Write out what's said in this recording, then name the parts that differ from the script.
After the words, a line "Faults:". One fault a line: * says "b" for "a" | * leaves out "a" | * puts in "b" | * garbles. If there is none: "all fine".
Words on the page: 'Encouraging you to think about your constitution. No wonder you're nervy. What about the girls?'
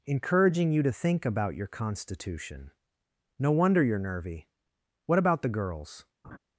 'Encouraging you to think about your constitution. No wonder you're nervy. What about the girls?'
Faults:
all fine